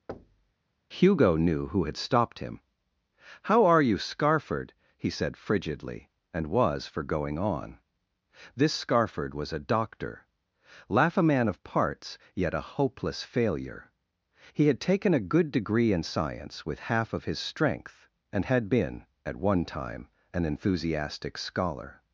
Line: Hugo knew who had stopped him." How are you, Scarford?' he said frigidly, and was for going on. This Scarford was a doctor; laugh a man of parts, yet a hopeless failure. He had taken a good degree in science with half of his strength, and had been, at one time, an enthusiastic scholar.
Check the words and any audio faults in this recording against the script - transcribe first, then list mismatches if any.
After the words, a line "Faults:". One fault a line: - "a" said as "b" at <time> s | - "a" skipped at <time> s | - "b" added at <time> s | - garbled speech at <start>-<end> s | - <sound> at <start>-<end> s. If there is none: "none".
Hugo knew who had stopped him." How are you, Scarford?' he said frigidly, and was for going on. This Scarford was a doctor; laugh a man of parts, yet a hopeless failure. He had taken a good degree in science with half of his strength, and had been, at one time, an enthusiastic scholar.
Faults:
- thud at 0.1-0.5 s